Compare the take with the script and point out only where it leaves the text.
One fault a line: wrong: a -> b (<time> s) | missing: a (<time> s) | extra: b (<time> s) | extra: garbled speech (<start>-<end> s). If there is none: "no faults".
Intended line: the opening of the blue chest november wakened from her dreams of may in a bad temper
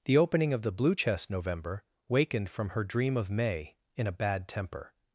wrong: dreams -> dream (2.8 s)